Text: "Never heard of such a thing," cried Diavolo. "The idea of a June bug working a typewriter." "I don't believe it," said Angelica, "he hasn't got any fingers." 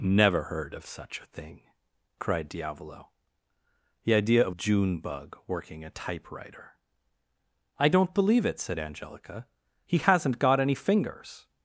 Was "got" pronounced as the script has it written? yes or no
yes